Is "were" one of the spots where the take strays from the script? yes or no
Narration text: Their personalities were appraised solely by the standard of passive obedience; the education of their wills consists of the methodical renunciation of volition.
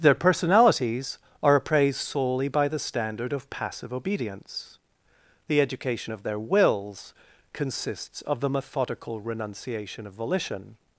yes